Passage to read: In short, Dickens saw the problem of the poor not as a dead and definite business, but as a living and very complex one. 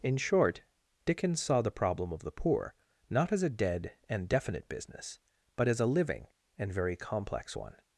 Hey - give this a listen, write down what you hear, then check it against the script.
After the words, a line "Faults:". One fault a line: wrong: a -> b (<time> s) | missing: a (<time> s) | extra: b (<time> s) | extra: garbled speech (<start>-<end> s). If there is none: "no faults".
In short, Dickens saw the problem of the poor not as a dead and definite business, but as a living and very complex one.
Faults:
no faults